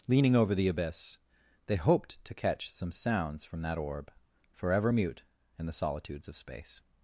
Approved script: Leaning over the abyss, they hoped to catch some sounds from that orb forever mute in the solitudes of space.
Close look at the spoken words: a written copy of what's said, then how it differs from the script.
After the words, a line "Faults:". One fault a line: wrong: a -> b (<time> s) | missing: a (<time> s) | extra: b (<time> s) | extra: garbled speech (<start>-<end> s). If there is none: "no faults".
Leaning over the abyss, they hoped to catch some sounds from that orb forever mute in the solitudes of space.
Faults:
no faults